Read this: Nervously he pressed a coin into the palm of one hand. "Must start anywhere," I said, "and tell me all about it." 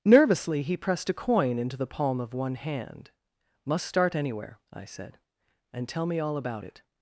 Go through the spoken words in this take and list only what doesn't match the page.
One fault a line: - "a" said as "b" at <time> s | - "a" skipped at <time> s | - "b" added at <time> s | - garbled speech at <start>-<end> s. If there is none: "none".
none